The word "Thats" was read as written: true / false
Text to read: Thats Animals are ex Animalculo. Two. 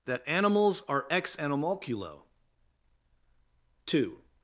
false